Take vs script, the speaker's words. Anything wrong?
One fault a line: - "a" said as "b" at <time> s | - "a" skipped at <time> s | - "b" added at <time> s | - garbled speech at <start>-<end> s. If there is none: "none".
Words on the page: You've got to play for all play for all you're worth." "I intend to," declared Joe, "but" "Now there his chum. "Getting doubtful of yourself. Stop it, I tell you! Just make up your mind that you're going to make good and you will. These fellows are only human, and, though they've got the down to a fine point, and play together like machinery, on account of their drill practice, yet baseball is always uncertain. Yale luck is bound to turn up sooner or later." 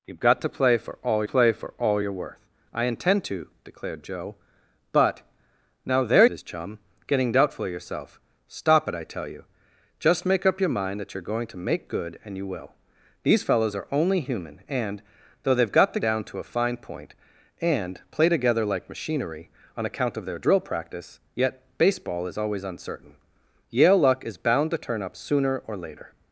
none